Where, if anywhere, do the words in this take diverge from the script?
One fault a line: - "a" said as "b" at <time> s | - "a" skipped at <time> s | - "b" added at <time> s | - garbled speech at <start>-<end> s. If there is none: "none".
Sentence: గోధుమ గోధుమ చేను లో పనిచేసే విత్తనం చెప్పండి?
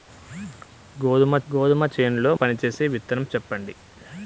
none